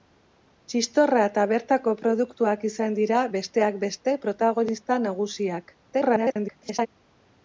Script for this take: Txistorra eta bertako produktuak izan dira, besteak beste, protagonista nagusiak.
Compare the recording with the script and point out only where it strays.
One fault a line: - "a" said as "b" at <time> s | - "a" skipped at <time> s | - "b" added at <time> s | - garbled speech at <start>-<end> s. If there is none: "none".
- garbled speech at 5.9-6.9 s